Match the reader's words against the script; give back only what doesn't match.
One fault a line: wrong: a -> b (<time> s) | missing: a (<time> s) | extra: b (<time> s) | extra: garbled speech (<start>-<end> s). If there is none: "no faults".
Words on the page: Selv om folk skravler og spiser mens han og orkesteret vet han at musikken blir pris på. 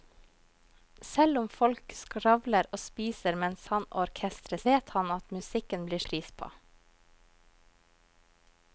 no faults